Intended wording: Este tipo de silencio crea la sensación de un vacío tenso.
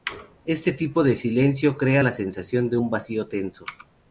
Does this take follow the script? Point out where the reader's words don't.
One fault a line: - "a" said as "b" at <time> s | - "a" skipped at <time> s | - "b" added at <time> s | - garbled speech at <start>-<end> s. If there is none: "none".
none